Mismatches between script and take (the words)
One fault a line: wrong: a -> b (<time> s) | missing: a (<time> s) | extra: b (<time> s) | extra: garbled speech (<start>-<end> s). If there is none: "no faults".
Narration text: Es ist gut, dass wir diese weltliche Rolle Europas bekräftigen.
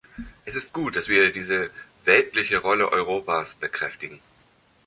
no faults